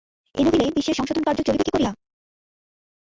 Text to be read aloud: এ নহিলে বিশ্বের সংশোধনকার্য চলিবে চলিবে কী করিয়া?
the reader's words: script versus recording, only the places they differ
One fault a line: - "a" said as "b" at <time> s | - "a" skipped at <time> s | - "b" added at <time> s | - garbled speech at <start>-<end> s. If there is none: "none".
- "চলিবে" skipped at 1.6 s